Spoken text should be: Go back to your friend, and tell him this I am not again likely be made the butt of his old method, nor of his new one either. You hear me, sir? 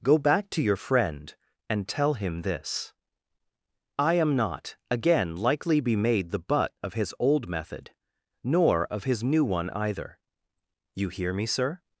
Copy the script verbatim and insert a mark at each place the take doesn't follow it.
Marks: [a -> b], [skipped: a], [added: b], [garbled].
Go back to your friend, and tell him this I am not again likely be made the butt of his old method, nor of his new one either. You hear me, sir?